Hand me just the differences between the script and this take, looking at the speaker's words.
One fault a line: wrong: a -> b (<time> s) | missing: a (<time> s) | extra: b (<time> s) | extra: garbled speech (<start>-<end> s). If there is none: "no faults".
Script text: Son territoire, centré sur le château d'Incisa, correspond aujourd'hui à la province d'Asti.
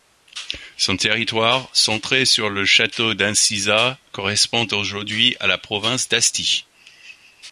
no faults